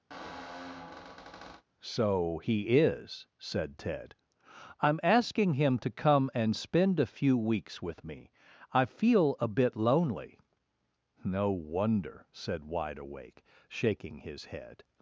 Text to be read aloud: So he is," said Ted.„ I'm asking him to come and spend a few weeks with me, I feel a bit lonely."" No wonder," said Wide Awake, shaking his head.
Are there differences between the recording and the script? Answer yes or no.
no